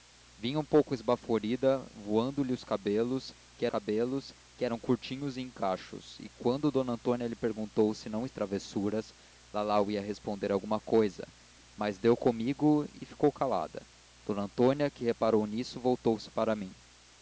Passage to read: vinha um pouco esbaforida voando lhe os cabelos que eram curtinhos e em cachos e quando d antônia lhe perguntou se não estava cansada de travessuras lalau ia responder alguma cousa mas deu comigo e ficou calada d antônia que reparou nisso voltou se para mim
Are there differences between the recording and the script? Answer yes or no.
yes